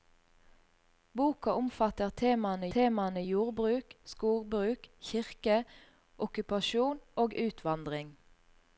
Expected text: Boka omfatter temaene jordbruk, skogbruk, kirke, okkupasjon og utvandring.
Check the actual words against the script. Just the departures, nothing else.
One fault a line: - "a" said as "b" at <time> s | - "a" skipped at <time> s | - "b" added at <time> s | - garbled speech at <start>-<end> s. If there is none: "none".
- "temaene" added at 2.7 s